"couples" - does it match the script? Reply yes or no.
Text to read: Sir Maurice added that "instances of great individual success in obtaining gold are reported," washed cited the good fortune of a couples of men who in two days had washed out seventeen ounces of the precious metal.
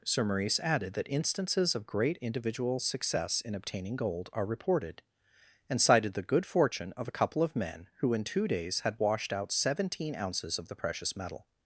no